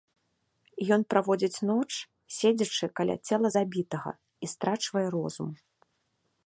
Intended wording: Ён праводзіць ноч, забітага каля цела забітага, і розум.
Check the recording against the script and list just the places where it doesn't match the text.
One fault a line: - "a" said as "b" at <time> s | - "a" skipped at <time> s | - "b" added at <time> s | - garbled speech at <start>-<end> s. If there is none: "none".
- "забітага" said as "седзячы" at 2.4 s
- "страчвае" added at 4.6 s